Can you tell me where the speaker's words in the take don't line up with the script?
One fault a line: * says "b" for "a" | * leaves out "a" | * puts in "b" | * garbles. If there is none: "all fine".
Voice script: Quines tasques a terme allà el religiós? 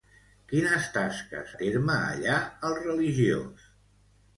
all fine